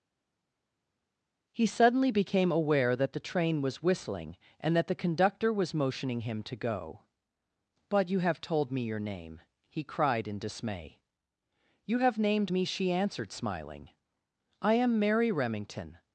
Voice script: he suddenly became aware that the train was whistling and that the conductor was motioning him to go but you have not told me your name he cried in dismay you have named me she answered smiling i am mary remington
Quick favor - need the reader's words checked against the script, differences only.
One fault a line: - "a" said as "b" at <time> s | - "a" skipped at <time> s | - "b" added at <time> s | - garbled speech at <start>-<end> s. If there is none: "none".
- "not" skipped at 8.4 s